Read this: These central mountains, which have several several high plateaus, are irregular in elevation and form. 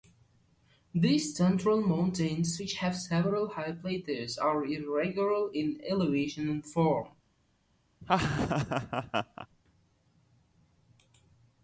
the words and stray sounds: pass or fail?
fail